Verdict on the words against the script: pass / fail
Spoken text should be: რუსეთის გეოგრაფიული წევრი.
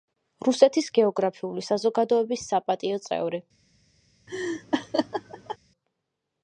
fail